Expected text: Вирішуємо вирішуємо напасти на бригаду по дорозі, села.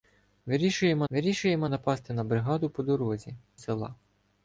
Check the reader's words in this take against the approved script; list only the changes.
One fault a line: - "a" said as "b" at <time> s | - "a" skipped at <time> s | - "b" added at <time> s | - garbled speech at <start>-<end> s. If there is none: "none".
none